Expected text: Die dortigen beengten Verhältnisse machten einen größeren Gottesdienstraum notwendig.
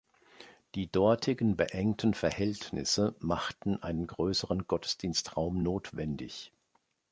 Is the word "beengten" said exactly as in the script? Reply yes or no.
yes